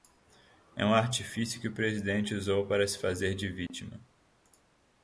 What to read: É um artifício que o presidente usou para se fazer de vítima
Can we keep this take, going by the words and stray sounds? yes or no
no